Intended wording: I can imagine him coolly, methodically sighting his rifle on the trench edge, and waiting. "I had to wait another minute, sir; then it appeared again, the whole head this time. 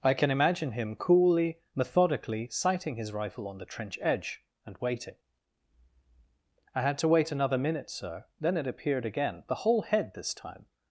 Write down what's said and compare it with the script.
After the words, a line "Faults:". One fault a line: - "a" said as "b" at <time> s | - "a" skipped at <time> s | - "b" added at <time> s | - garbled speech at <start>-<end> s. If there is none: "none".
I can imagine him coolly, methodically sighting his rifle on the trench edge, and waiting. "I had to wait another minute, sir; then it appeared again, the whole head this time.
Faults:
none